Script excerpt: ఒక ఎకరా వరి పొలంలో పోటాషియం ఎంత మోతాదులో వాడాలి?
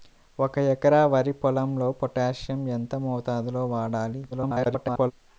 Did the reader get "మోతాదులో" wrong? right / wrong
right